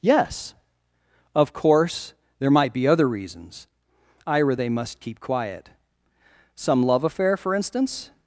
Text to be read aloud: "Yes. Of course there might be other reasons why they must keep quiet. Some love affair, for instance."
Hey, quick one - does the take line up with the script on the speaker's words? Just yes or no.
no